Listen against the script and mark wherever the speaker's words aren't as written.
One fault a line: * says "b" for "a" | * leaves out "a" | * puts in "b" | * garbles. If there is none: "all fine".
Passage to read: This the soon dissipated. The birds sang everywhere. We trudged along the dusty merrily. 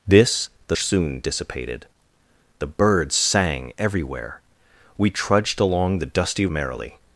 all fine